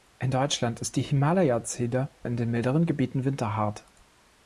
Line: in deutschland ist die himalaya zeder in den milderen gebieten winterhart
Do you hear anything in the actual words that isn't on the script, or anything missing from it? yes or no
no